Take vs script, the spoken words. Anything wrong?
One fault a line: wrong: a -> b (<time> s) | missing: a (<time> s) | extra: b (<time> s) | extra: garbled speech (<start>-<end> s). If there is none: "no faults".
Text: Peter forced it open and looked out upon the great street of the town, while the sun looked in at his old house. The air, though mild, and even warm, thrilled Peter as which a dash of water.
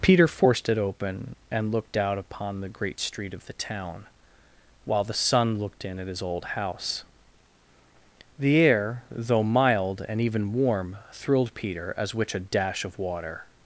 no faults